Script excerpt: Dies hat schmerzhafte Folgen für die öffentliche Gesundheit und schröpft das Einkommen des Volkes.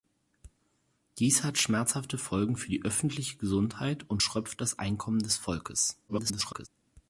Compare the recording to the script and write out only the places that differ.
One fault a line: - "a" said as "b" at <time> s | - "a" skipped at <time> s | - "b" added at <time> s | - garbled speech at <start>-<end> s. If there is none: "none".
- garbled speech at 6.1-6.7 s